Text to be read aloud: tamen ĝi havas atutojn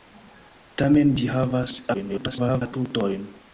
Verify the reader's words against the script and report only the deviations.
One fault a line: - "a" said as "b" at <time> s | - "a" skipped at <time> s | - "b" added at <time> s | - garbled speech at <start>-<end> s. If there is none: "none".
- garbled speech at 1.9-2.6 s